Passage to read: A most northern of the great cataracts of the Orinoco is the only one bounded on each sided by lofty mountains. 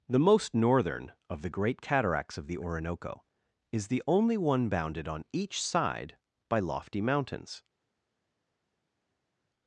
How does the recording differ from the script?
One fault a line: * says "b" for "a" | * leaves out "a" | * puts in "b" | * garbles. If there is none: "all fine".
* says "The" for "A"
* says "side" for "sided"